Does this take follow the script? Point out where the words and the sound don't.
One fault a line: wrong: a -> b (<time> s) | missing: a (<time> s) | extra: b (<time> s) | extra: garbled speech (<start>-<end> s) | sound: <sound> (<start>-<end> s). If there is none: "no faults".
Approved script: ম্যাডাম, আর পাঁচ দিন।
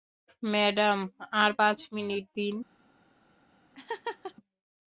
extra: মিনিট (1.9 s)
sound: laugh (3.7-4.3 s)